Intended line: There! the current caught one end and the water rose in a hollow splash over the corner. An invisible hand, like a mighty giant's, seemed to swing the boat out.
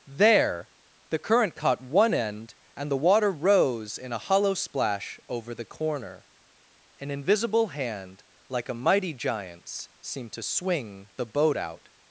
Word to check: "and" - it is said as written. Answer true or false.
true